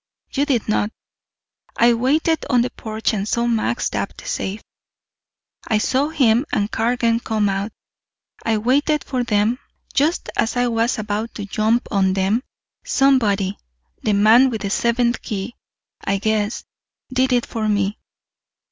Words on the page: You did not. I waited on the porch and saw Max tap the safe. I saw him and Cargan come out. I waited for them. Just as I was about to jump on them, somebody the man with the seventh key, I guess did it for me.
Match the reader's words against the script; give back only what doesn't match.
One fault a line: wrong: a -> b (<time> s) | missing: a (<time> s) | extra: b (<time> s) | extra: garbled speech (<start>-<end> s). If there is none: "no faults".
no faults